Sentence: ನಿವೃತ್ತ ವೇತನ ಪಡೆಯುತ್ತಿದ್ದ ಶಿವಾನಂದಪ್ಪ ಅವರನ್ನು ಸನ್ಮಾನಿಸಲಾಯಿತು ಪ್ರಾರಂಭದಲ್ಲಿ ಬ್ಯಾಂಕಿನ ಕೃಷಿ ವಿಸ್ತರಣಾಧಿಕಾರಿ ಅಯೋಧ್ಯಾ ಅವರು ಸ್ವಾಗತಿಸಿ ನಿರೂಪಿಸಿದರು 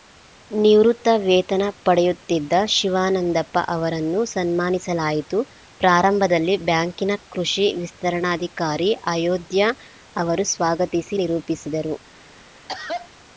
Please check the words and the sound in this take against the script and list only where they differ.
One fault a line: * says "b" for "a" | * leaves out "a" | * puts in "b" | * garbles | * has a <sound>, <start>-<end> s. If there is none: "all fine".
* has a cough, 12.7-13.1 s